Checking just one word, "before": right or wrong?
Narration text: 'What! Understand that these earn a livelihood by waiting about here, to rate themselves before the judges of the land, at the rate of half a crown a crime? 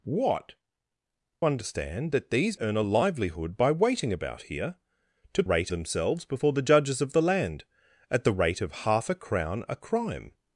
right